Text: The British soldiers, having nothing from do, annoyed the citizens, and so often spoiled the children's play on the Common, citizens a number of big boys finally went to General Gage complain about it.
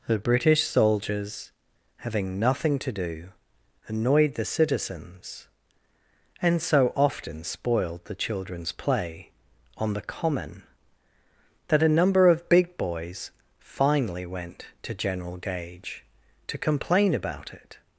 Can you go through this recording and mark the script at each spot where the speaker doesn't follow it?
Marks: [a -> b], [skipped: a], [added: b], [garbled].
The British soldiers, having nothing [from -> to] do, annoyed the citizens, and so often spoiled the children's play on the Common, [citizens -> that] a number of big boys finally went to General Gage [added: to] complain about it.